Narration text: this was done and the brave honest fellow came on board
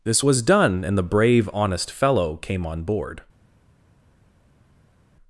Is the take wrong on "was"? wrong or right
right